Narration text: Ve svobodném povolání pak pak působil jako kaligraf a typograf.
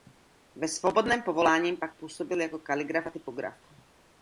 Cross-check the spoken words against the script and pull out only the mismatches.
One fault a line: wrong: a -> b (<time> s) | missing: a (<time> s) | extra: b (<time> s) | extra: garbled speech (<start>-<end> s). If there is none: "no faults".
missing: pak (2.0 s)